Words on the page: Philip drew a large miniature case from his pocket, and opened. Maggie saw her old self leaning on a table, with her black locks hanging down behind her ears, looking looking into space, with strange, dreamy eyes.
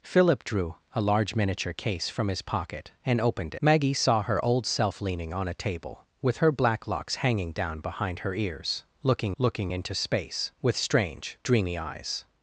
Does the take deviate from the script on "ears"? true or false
false